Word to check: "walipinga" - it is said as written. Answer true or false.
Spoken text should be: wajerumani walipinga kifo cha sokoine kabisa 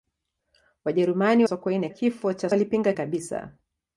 false